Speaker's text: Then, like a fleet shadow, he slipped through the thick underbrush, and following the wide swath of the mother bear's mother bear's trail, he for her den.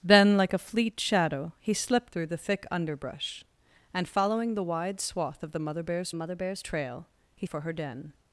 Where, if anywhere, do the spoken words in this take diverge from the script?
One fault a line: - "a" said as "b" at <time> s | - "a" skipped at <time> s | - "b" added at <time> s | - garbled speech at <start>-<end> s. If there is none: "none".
none